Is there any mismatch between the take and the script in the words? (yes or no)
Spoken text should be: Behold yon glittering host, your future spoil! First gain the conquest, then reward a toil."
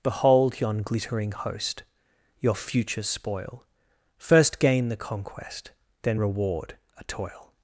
no